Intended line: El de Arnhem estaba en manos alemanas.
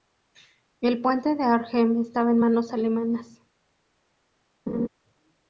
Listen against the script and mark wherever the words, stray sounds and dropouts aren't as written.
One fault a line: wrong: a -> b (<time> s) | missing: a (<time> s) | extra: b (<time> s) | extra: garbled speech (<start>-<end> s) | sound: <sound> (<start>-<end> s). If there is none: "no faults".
extra: puente (1.0 s)
sound: laugh (4.7-4.9 s)